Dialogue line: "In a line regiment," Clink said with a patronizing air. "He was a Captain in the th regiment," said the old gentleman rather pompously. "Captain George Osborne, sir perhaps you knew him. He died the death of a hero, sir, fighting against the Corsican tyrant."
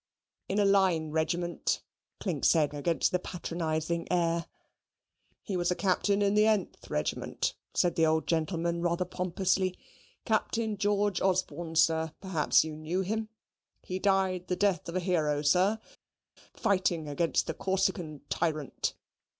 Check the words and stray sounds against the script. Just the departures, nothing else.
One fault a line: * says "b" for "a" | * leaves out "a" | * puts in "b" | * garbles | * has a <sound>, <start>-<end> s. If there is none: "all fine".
* says "against" for "with"